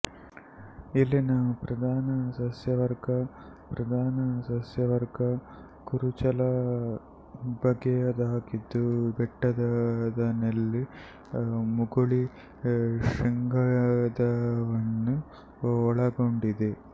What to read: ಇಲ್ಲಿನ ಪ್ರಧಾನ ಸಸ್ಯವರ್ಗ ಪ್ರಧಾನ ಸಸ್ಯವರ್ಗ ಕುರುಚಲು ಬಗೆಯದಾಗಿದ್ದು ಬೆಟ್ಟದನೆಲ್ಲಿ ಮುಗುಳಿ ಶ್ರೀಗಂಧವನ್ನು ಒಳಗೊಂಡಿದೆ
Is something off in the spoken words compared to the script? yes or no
no